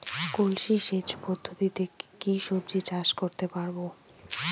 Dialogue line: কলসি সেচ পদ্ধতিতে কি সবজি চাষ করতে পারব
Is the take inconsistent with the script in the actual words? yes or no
no